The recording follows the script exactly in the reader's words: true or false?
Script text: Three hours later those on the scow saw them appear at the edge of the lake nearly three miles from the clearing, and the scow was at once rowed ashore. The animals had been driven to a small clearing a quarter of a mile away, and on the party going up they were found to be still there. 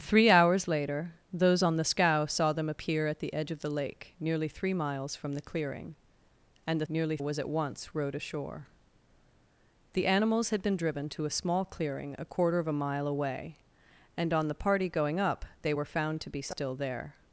false